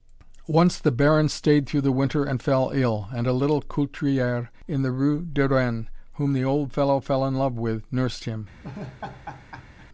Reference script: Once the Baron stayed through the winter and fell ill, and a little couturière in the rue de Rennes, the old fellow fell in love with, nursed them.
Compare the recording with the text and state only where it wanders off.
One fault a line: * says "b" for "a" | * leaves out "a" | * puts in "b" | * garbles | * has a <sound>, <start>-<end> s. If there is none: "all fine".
* puts in "whom"
* says "him" for "them"
* has a laugh, 8.6-9.9 s